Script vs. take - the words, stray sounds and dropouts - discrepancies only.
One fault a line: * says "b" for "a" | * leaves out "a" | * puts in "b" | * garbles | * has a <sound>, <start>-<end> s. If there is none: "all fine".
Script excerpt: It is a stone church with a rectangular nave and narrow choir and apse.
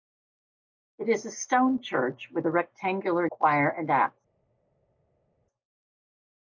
* leaves out "nave and narrow"